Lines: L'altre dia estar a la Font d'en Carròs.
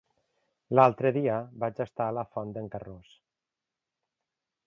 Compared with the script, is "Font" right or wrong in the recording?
right